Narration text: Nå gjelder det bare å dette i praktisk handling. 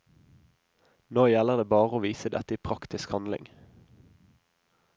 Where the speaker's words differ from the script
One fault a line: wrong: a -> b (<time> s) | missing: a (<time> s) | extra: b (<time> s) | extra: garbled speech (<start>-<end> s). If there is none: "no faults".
extra: vise (2.0 s)